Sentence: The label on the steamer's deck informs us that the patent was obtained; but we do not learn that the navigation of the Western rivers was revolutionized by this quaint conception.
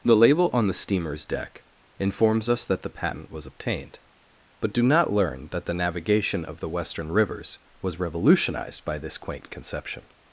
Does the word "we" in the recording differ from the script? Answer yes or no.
yes